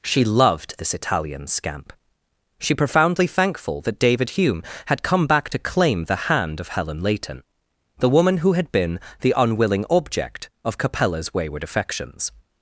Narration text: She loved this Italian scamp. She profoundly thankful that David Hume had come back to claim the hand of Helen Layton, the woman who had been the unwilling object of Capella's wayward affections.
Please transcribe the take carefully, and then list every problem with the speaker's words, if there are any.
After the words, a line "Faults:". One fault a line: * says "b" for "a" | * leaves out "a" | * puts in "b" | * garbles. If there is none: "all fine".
She loved this Italian scamp. She profoundly thankful that David Hume had come back to claim the hand of Helen Layton, the woman who had been the unwilling object of Capella's wayward affections.
Faults:
all fine